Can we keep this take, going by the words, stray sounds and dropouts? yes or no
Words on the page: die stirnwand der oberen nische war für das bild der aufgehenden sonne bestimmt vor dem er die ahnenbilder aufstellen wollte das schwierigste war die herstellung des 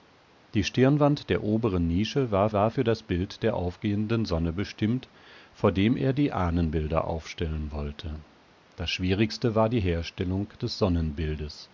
no